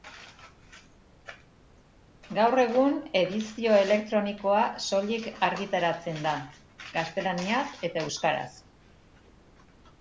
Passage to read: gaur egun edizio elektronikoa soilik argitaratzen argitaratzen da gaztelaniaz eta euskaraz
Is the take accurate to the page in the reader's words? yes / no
no